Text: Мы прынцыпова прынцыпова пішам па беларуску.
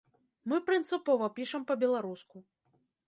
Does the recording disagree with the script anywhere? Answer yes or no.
yes